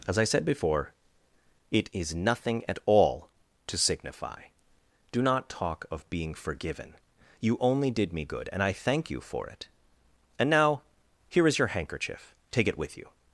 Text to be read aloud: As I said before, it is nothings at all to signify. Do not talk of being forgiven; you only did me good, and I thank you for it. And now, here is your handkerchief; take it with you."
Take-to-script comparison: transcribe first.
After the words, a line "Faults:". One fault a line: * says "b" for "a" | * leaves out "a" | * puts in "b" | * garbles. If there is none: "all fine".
As I said before, it is nothing at all to signify. Do not talk of being forgiven; you only did me good, and I thank you for it. And now, here is your handkerchief; take it with you."
Faults:
* says "nothing" for "nothings"